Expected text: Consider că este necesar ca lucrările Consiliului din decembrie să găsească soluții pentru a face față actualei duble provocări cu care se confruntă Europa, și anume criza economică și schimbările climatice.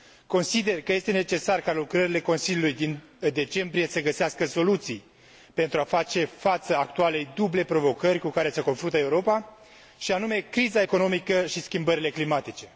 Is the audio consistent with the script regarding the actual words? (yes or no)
yes